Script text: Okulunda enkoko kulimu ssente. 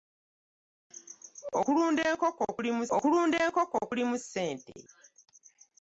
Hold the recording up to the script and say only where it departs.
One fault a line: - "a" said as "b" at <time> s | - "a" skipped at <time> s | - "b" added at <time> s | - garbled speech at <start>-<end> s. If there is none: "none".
- "okulunda enkoko kulimu" added at 3.0 s